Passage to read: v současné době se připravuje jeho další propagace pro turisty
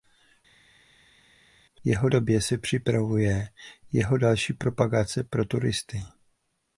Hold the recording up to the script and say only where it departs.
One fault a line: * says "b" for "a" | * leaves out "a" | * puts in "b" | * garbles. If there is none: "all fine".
* says "jeho" for "současné"